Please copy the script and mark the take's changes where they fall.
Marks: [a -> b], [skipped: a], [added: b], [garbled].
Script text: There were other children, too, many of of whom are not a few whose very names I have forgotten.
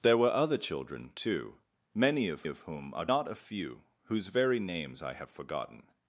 There were other children, too, many of of whom are not a few whose very names I have forgotten.